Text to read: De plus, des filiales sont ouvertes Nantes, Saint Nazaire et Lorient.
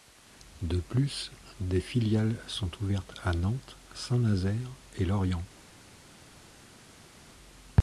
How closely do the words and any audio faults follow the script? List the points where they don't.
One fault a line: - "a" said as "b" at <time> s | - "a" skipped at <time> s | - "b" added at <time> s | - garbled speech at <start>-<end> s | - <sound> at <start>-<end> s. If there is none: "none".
- "à" added at 3.2 s